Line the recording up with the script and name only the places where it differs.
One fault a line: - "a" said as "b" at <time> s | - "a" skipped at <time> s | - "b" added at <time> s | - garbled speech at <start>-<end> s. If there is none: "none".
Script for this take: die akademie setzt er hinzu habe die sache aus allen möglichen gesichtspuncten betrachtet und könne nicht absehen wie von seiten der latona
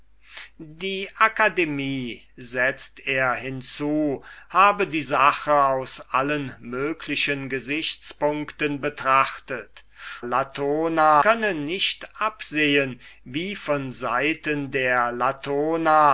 - "und" said as "latona" at 10.2 s